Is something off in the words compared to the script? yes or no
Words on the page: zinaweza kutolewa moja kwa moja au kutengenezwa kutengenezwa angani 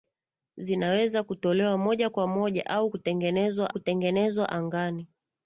no